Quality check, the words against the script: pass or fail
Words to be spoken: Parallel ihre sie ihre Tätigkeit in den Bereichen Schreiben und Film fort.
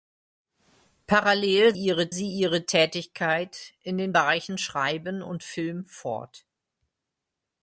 pass